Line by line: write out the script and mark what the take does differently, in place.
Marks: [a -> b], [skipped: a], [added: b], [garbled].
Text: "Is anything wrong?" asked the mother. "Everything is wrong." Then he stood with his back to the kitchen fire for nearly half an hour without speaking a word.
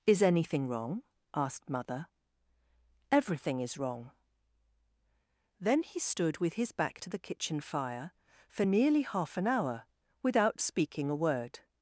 "Is anything wrong?" asked [skipped: the] mother. "Everything is wrong." Then he stood with his back to the kitchen fire for nearly half an hour without speaking a word.